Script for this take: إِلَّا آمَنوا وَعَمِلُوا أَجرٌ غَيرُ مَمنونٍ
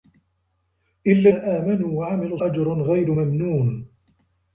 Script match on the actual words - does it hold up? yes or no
yes